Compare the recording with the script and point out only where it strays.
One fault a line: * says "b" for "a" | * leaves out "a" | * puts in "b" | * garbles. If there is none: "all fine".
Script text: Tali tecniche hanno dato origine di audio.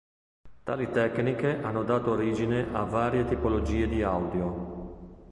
* puts in "a varie tipologie"